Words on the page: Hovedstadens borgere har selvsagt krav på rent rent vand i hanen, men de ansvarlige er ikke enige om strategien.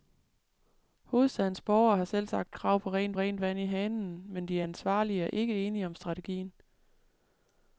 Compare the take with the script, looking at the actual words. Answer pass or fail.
pass